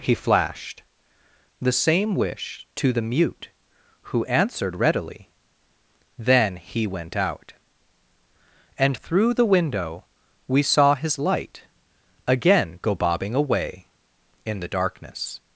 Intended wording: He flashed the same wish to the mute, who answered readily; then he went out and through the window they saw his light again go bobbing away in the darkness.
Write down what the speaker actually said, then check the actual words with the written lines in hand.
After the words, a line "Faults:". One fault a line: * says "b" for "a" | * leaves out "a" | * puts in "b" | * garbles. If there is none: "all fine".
He flashed the same wish to the mute, who answered readily; then he went out and through the window we saw his light again go bobbing away in the darkness.
Faults:
* says "we" for "they"